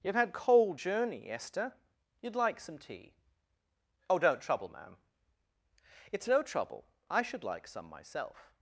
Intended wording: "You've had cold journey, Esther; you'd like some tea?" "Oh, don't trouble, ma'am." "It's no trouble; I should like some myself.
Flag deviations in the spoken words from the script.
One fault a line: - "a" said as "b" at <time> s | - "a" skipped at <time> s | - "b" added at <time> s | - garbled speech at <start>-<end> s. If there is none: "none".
none